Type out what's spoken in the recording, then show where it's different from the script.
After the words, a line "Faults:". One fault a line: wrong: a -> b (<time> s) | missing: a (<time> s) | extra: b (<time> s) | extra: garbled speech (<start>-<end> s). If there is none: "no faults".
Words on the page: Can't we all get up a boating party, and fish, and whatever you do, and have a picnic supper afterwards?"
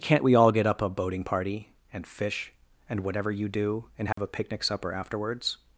Can't we all get up a boating party, and fish, and whatever you do, and have a picnic supper afterwards?"
Faults:
no faults